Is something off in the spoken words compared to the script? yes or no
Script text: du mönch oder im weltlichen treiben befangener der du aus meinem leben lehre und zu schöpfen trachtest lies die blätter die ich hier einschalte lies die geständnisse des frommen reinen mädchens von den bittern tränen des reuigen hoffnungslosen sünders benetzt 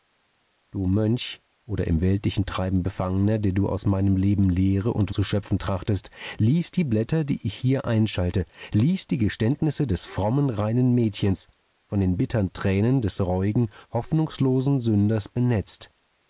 no